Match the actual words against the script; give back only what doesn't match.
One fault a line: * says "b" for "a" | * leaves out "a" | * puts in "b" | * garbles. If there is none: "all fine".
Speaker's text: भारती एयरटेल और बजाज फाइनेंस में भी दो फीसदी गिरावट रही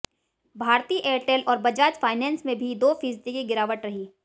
* puts in "की"